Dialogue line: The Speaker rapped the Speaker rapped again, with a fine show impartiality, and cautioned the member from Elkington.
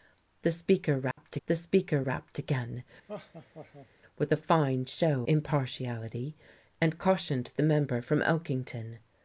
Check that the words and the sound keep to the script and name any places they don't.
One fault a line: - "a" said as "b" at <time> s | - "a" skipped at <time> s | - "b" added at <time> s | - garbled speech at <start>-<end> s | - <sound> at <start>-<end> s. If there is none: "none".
- dropout at 1.1-1.2 s
- laugh at 3.1-3.9 s